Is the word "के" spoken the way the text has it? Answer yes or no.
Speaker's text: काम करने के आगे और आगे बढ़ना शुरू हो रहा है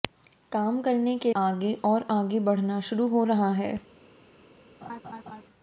yes